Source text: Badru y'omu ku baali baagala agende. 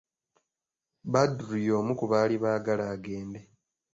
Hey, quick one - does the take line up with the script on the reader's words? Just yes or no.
yes